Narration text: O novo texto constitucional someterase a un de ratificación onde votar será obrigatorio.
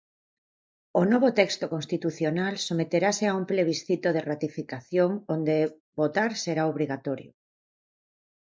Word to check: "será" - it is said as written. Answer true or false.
true